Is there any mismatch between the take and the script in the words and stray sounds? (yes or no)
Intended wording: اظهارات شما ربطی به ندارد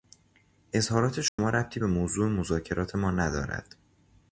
yes